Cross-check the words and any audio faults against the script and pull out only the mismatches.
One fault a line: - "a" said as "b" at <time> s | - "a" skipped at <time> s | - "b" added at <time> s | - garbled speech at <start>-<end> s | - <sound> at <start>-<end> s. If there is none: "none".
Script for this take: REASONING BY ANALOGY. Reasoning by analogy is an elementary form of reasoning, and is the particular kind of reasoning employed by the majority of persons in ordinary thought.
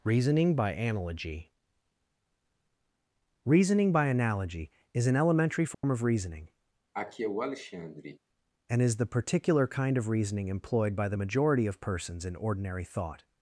- dropout at 5.7-5.8 s
- cough at 6.9-8.2 s